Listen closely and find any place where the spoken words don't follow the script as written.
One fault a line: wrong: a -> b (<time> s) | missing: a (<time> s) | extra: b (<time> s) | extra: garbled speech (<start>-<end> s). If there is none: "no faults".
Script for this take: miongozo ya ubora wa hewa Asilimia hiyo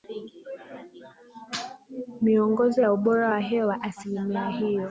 no faults